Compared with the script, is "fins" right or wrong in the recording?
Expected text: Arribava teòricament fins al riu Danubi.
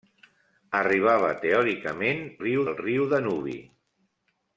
wrong